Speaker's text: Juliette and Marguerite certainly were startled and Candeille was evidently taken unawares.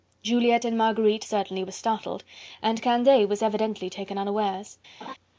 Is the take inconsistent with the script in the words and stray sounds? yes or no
yes